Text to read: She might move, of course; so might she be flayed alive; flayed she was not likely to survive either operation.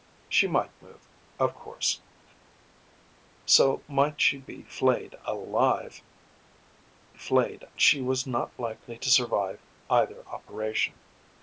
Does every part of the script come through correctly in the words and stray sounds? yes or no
yes